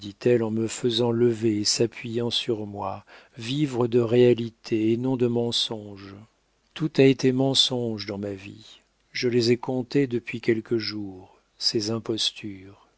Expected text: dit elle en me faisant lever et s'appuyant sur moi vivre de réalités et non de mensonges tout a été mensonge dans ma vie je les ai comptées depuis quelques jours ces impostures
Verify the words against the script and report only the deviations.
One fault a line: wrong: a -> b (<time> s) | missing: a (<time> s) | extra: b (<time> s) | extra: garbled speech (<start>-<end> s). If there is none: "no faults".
no faults